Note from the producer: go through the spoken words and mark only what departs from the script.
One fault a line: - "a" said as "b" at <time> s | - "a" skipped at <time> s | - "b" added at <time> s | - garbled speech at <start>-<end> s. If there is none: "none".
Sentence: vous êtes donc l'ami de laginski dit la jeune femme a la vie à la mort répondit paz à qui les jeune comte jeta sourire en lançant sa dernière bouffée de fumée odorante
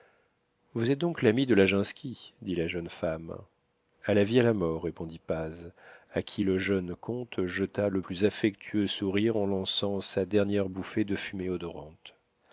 - "les" said as "le" at 6.4 s
- "le plus affectueux" added at 7.9 s